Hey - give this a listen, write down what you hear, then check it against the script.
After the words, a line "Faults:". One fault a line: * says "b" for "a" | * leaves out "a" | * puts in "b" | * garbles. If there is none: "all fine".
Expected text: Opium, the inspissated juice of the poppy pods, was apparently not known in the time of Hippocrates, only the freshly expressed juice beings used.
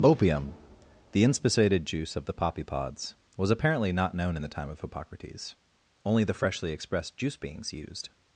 Opium, the inspissated juice of the poppy pods, was apparently not known in the time of Hippocrates, only the freshly expressed juice beings used.
Faults:
all fine